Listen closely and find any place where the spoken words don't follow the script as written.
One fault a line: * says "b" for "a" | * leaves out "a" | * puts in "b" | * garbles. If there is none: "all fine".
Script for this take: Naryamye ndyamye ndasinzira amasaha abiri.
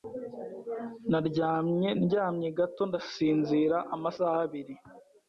* puts in "gato"